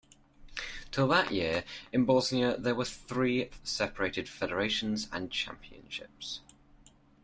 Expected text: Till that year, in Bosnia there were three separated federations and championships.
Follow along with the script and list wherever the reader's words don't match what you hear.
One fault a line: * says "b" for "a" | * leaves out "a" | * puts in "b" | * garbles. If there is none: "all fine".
all fine